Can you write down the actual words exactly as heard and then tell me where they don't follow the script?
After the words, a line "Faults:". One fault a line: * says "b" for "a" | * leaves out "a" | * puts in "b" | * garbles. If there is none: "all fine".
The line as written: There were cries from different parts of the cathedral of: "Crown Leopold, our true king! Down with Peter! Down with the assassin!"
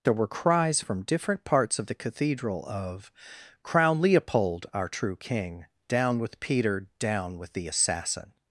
There were cries from different parts of the cathedral of: "Crown Leopold, our true king! Down with Peter! Down with the assassin!"
Faults:
all fine